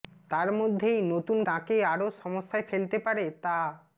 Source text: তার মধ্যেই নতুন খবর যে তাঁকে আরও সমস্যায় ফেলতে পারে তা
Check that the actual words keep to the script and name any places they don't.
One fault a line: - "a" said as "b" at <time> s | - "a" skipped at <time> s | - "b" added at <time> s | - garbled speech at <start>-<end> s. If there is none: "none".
- "খবর যে" skipped at 1.4 s